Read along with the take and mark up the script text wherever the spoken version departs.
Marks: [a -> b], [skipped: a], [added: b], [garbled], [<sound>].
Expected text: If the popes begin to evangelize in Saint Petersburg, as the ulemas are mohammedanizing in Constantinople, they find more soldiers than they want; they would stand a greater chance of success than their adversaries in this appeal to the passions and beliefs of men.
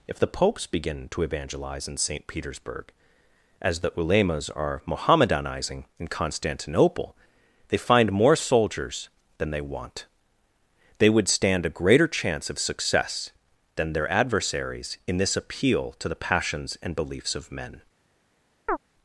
If the popes begin to evangelize in Saint Petersburg, as the ulemas are mohammedanizing in Constantinople, they find more soldiers than they want; they would stand a greater chance of success than their adversaries in this appeal to the passions and beliefs of men. [chirp]